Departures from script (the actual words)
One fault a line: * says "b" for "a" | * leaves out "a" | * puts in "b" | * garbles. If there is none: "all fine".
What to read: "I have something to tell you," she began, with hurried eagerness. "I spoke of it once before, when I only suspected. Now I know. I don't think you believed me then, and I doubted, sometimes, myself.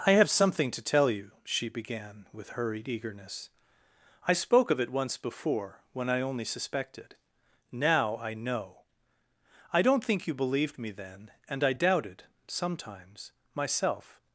all fine